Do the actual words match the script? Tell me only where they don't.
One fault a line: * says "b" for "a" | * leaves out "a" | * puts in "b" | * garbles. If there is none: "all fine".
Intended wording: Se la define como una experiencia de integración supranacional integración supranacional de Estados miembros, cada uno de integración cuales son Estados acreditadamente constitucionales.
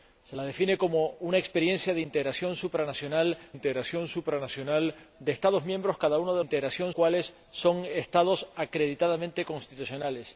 all fine